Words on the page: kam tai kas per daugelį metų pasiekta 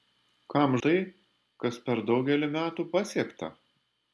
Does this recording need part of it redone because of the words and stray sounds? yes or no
no